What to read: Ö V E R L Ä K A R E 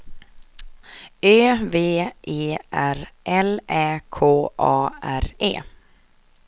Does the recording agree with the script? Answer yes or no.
yes